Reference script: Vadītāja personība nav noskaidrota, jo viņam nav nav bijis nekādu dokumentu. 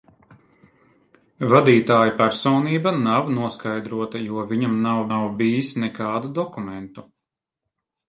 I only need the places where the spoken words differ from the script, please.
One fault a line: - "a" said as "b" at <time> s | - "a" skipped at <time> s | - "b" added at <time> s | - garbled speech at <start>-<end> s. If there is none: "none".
none